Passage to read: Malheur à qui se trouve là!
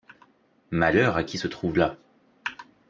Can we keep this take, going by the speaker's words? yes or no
yes